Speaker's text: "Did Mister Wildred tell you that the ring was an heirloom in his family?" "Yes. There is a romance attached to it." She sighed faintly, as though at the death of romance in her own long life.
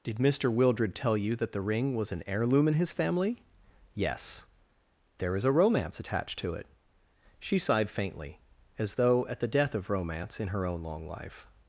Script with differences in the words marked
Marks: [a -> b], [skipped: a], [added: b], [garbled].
"Did Mister Wildred tell you that the ring was an heirloom in his family?" "Yes. There is a romance attached to it." She sighed faintly, as though at the death of romance in her own long life.